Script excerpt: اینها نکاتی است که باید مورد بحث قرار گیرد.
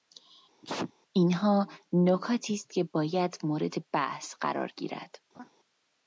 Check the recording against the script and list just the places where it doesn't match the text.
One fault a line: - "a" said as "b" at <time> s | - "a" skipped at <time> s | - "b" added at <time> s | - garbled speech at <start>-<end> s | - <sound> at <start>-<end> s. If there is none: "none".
- sneeze at 0.6-0.9 s
- laugh at 5.3-5.5 s